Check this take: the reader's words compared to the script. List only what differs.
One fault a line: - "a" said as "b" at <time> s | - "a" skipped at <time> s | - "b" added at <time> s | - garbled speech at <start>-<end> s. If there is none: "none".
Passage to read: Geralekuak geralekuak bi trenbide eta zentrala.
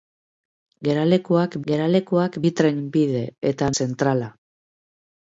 none